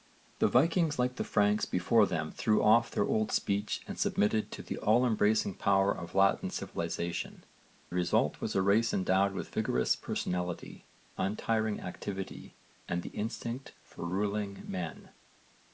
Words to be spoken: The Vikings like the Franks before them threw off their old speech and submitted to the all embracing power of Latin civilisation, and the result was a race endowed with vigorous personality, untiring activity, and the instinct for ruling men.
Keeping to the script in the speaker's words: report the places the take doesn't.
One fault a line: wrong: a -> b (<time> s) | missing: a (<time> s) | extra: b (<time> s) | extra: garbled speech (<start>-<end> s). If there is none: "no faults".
missing: and (7.5 s)